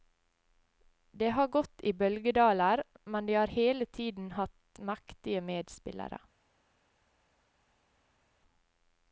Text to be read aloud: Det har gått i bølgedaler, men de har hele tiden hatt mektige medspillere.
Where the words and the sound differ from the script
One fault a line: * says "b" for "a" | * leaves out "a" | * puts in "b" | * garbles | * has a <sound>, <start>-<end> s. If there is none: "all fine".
all fine